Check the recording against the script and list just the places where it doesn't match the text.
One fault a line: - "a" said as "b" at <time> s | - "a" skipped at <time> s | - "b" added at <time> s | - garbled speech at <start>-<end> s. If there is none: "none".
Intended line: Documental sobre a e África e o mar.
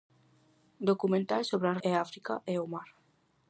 none